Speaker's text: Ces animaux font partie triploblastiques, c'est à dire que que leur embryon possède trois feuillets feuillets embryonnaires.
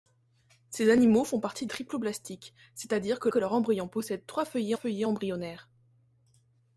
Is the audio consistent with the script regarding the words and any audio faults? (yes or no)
yes